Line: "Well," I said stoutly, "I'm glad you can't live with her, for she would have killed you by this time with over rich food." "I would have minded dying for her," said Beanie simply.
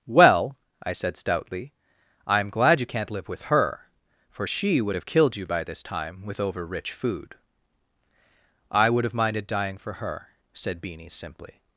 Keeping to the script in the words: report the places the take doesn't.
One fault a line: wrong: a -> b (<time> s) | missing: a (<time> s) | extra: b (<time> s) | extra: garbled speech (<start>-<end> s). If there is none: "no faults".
no faults